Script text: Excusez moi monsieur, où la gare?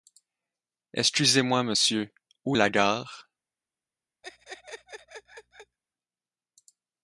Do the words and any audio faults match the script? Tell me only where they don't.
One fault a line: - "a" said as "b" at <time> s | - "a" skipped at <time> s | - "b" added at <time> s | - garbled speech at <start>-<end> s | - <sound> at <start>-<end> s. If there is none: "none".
- laugh at 4.2-5.8 s